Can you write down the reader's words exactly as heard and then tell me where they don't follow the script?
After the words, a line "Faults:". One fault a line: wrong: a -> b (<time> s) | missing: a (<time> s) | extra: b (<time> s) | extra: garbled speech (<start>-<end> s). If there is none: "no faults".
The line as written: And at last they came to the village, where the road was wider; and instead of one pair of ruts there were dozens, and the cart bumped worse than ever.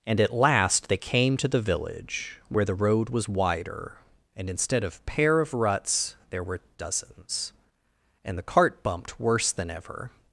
And at last they came to the village, where the road was wider; and instead of pair of ruts there were dozens, and the cart bumped worse than ever.
Faults:
missing: one (5.0 s)